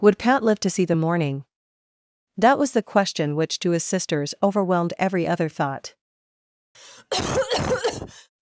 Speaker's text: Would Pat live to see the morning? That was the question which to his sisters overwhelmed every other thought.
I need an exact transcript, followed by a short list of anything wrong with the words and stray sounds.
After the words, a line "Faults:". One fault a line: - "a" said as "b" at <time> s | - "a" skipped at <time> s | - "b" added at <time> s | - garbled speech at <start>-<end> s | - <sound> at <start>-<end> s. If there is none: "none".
Would Pat live to see the morning? That was the question which to his sisters overwhelmed every other thought.
Faults:
- cough at 6.7-8.3 s